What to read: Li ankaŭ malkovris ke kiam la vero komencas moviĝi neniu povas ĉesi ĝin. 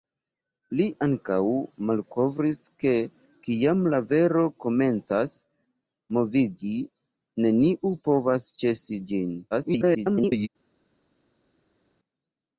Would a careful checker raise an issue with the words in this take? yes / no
yes